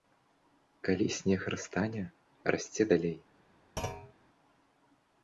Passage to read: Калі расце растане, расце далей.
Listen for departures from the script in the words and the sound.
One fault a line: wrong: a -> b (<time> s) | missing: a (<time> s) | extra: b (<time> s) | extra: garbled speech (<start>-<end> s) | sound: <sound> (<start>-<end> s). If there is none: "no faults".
wrong: расце -> снег (1.2 s)
sound: thud (3.8-4.1 s)